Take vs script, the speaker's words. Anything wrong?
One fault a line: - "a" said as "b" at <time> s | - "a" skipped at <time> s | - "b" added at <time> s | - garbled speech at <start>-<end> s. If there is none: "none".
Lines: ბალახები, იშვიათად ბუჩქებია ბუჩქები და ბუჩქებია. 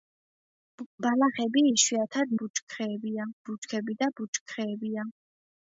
none